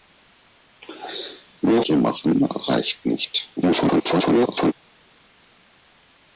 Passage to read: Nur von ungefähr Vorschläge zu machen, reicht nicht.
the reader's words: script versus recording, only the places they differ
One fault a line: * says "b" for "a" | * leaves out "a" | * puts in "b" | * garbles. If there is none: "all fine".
* leaves out "von ungefähr Vorschläge"
* garbles